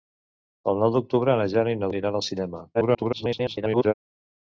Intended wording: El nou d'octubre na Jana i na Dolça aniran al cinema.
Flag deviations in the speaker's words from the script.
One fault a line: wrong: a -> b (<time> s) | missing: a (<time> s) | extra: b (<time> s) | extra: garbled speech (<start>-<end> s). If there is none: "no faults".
missing: Dolça (1.9 s)
extra: garbled speech (2.7-3.9 s)